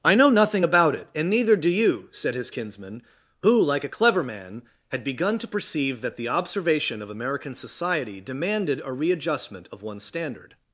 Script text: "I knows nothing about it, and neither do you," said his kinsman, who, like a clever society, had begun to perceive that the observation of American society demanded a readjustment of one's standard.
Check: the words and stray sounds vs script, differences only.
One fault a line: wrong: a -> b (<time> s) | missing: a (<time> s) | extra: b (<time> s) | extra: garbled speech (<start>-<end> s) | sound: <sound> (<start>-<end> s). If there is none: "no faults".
wrong: knows -> know (0.1 s)
wrong: society -> man (4.2 s)